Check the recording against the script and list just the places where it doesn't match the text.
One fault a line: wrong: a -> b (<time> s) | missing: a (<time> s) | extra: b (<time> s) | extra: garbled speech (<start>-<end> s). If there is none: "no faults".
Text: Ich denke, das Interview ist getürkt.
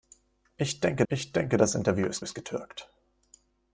extra: ich denke (1.1 s)
extra: ist (2.2 s)